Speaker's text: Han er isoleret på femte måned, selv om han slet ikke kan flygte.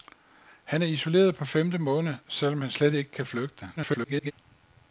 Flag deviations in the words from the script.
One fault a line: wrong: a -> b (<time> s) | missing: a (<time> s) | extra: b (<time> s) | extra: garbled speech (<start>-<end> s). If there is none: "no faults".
extra: garbled speech (3.8-4.3 s)